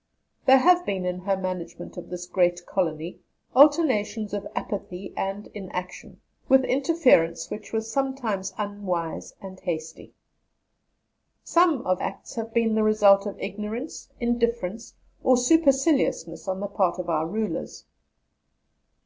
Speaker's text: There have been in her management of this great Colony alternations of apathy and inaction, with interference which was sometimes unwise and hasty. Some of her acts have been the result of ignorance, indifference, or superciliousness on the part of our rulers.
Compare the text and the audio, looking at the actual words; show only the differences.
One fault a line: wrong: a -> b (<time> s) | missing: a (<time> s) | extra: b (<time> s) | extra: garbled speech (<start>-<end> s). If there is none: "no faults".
missing: her (12.0 s)